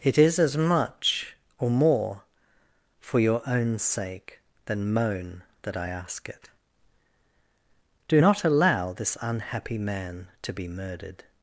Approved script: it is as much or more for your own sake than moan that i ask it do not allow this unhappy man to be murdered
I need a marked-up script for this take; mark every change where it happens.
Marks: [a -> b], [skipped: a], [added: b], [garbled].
it is as much or more for your own sake than moan that i ask it do not allow this unhappy man to be murdered